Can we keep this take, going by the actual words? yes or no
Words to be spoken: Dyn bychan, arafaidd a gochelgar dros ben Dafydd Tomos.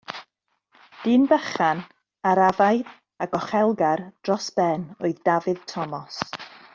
no